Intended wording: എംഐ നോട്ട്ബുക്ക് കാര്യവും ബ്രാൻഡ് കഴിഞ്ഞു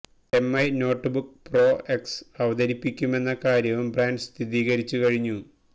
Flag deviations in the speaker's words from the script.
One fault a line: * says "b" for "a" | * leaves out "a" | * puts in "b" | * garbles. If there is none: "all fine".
* puts in "പ്രോ എക്സ് അവതരിപ്പിക്കുമെന്ന"
* puts in "സ്ഥിരീകരിച്ചു"